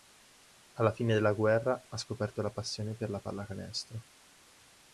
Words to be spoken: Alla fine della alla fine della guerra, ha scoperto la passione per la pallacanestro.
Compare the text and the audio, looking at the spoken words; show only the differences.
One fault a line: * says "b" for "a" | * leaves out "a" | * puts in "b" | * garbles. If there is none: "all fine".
* leaves out "alla fine della"